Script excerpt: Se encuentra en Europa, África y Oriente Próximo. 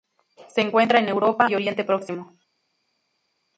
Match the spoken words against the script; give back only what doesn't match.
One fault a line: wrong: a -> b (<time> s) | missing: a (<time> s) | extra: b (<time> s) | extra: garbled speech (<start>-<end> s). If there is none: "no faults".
missing: África (1.4 s)